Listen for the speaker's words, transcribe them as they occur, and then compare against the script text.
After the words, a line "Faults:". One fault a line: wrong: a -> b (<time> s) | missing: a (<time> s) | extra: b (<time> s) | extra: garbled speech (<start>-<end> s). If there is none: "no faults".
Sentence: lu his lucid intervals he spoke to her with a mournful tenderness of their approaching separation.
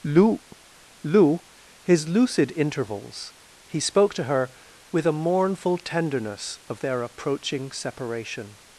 lu lu his lucid intervals he spoke to her with a mournful tenderness of their approaching separation.
Faults:
extra: lu (1.0 s)